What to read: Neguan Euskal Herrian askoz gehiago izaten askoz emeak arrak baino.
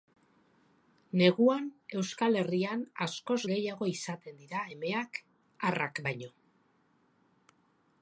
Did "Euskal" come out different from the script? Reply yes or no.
no